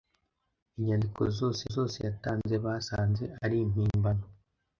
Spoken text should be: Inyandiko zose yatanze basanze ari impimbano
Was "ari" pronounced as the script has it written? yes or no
yes